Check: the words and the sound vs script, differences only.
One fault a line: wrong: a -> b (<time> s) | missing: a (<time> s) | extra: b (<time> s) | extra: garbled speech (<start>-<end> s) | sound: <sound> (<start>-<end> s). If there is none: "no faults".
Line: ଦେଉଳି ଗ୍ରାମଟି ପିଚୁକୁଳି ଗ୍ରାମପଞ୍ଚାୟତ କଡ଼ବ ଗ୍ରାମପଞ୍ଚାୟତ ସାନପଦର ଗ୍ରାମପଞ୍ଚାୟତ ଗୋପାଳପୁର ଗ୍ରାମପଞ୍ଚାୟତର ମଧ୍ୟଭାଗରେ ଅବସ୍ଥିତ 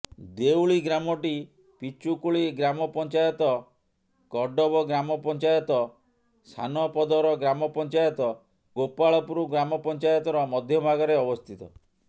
no faults